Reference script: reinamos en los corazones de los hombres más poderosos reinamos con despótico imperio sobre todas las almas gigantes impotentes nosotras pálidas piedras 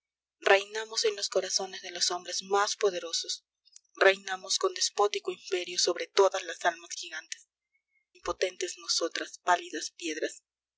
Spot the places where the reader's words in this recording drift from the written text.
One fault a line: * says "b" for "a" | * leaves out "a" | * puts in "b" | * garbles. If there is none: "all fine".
all fine